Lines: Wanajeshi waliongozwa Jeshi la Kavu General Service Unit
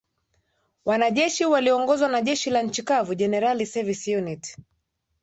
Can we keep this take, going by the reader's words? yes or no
no